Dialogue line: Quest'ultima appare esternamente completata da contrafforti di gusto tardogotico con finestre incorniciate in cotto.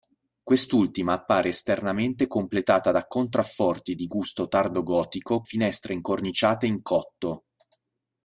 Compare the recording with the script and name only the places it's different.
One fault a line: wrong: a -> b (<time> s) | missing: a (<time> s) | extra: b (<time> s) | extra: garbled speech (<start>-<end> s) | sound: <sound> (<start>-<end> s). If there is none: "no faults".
missing: con (5.4 s)